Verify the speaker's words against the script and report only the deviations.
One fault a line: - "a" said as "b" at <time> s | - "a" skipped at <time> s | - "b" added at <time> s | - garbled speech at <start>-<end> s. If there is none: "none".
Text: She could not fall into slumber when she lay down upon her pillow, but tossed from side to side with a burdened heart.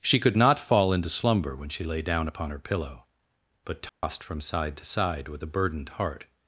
none